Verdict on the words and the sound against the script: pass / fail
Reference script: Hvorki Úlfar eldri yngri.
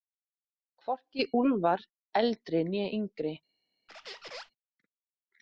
fail